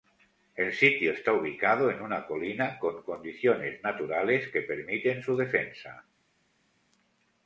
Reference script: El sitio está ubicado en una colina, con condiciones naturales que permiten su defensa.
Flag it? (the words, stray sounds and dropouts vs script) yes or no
no